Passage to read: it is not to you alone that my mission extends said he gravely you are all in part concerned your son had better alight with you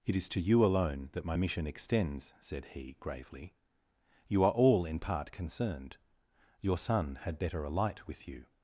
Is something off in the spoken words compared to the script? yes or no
yes